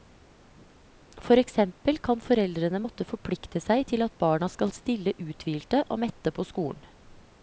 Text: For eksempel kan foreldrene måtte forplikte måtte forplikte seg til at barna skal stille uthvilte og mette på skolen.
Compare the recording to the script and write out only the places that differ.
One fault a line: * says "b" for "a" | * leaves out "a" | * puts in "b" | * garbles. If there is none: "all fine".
* leaves out "måtte forplikte"